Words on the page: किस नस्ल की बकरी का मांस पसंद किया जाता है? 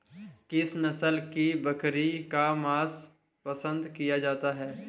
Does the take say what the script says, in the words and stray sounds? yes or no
yes